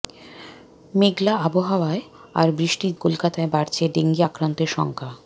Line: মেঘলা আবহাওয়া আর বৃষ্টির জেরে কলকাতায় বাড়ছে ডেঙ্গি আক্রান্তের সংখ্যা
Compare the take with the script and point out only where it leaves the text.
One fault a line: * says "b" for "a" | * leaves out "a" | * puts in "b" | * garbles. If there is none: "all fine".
* leaves out "জেরে"